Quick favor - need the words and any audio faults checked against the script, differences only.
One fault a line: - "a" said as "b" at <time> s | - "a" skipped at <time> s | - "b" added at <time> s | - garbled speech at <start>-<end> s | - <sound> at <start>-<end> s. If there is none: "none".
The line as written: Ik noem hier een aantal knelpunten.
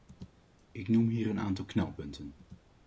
none